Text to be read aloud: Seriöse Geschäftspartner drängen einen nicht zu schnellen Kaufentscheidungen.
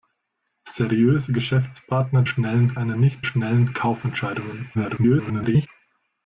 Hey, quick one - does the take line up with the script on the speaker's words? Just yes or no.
no